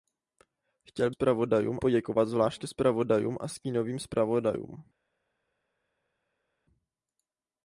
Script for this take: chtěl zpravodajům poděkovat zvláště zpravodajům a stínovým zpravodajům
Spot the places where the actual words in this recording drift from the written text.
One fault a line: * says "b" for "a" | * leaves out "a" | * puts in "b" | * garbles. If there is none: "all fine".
all fine